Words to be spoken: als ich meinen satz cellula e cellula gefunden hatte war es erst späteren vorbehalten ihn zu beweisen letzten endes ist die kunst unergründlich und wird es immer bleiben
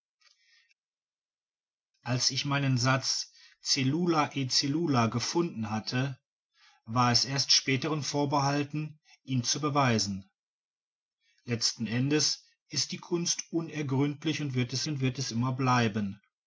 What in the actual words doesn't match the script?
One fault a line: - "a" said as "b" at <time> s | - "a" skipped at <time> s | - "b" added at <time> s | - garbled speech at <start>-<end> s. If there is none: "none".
- "und wird es" added at 14.9 s